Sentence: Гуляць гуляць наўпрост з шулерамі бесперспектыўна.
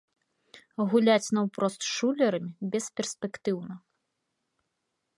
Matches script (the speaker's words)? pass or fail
fail